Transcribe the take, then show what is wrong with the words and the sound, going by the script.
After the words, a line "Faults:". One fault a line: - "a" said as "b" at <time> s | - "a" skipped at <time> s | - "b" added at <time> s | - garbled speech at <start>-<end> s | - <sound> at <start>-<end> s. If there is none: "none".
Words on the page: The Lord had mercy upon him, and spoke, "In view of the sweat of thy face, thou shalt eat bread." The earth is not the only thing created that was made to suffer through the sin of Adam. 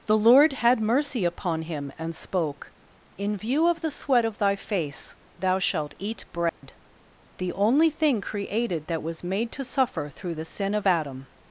The Lord had mercy upon him, and spoke, "In view of the sweat of thy face, thou shalt eat bread." the only thing created that was made to suffer through the sin of Adam.
Faults:
- dropout at 6.5-6.6 s
- "earth is not the" skipped at 7.5 s